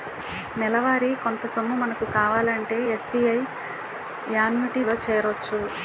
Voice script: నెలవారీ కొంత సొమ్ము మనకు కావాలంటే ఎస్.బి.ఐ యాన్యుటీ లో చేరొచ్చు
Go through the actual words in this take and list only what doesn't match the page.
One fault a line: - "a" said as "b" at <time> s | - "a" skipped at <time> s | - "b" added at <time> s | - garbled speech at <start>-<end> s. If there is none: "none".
none